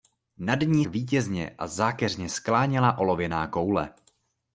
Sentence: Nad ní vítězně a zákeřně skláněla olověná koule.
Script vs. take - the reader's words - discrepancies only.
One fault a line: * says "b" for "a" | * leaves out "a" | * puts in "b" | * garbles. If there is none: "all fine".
all fine